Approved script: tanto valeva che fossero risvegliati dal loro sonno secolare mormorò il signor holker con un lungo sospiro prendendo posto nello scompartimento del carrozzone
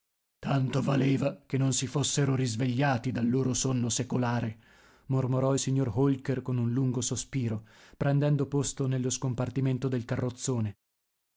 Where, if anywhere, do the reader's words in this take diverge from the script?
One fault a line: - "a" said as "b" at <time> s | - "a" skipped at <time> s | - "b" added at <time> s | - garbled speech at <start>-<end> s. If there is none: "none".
- "non si" added at 1.6 s